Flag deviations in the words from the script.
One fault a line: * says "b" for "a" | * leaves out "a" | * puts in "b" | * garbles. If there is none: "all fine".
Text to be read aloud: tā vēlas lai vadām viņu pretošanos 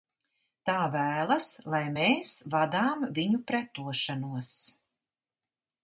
* puts in "mēs"